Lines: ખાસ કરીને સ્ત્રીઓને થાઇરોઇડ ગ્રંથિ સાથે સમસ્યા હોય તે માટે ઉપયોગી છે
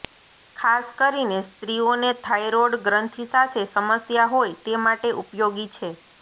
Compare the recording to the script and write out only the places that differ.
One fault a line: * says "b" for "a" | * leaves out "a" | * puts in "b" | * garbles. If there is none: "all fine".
all fine